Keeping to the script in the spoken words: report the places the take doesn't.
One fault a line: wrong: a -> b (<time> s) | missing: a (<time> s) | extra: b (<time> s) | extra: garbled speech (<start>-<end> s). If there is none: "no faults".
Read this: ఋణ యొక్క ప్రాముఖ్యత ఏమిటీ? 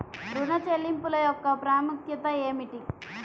extra: చెల్లింపుల (0.7 s)